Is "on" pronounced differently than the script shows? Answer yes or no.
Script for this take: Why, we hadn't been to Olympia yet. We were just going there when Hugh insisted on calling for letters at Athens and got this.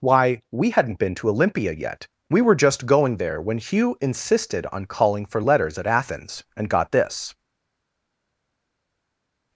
no